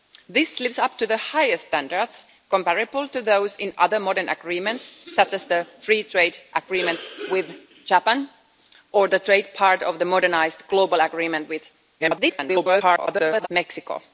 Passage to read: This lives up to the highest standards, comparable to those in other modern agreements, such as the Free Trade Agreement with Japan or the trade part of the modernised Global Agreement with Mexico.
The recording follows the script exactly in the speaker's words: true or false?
false